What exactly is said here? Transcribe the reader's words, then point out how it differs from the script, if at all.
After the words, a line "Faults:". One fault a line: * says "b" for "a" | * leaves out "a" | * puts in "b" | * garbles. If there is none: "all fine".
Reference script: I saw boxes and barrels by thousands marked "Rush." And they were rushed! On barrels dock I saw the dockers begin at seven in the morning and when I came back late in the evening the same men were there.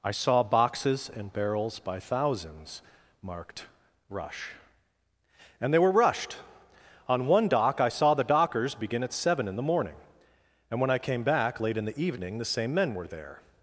I saw boxes and barrels by thousands marked "Rush." And they were rushed! On one dock I saw the dockers begin at seven in the morning and when I came back late in the evening the same men were there.
Faults:
* says "one" for "barrels"